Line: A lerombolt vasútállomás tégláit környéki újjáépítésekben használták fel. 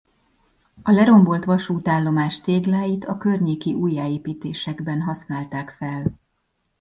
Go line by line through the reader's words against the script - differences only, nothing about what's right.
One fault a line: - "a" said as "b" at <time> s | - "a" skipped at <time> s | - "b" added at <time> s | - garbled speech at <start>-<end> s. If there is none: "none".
- "a" added at 3.0 s